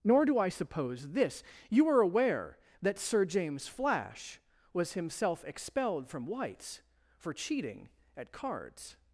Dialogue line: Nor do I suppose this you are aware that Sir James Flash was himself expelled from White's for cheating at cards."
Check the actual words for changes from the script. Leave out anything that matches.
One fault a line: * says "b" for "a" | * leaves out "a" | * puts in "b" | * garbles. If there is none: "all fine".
all fine